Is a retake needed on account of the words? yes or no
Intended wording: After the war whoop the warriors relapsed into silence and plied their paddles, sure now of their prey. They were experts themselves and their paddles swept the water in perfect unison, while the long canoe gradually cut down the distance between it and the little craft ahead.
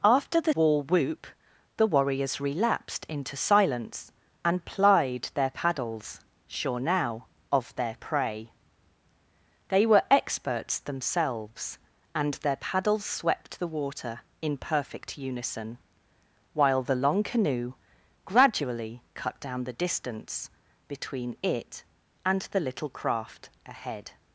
no